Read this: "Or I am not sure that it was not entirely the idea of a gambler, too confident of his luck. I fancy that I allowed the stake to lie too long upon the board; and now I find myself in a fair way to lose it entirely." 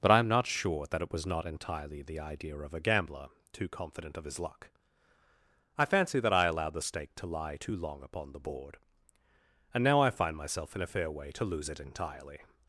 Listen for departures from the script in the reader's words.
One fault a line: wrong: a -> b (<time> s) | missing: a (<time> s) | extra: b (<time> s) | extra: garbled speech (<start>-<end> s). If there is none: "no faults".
wrong: Or -> But (0.0 s)